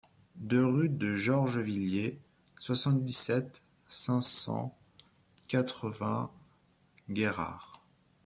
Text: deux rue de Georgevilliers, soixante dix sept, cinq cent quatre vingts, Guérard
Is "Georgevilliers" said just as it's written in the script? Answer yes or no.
yes